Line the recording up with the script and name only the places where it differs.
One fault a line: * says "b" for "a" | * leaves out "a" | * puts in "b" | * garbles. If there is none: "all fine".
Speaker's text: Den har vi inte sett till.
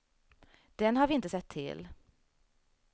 all fine